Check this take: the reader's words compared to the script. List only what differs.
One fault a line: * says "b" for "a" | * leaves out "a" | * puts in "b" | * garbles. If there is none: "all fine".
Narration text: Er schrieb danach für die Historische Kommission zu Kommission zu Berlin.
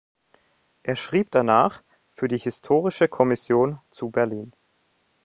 * leaves out "Kommission zu"